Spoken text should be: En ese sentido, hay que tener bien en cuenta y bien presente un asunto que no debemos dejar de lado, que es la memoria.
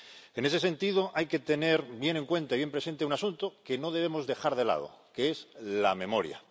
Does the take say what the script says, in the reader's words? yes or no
yes